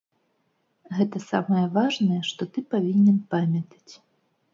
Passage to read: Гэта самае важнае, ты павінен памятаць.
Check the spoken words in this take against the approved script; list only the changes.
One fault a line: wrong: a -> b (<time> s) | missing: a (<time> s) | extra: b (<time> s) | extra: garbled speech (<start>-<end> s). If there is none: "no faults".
extra: што (2.3 s)